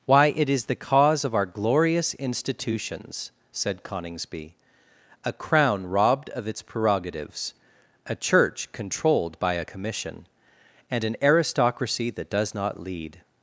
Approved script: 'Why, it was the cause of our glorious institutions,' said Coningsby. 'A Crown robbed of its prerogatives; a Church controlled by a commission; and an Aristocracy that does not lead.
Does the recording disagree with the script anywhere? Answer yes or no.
yes